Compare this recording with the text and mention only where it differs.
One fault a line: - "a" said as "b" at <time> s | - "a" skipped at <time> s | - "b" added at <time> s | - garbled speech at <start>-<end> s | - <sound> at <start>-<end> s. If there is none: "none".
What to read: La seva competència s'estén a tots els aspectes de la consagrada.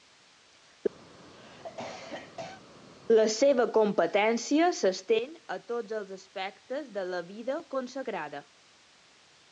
- cough at 1.1-2.6 s
- "vida" added at 7.3 s